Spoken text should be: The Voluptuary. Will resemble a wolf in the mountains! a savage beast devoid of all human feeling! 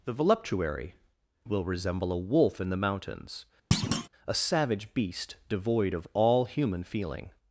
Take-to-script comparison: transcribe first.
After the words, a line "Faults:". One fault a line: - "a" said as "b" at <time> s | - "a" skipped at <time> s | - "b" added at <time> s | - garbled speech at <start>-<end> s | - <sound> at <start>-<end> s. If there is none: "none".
The Voluptuary. Will resemble a wolf in the mountains! a savage beast devoid of all human feeling!
Faults:
- thud at 3.7-4.1 s